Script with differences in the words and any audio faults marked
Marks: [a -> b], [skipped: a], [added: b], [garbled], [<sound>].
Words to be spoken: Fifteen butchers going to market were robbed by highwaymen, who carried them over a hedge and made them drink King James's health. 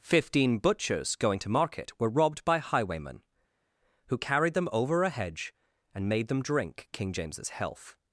Fifteen butchers going to market were robbed by highwaymen, who carried them over a hedge and made them drink King James's health.